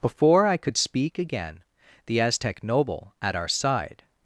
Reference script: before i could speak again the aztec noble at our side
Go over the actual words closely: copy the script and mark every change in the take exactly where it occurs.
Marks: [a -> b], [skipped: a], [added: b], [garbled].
before i could speak again the aztec noble at our side